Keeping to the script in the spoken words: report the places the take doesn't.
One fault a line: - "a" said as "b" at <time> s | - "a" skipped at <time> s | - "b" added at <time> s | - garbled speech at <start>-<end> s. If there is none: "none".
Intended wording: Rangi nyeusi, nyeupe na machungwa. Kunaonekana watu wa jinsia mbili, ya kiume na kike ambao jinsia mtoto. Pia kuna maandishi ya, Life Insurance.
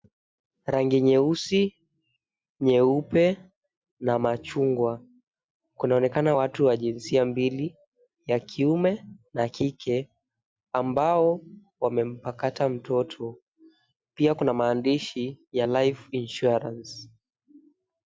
- "jinsia" said as "wamempakata" at 11.8 s